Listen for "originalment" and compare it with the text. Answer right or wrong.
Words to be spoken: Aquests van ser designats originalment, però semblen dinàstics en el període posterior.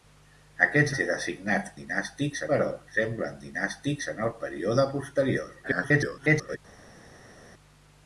wrong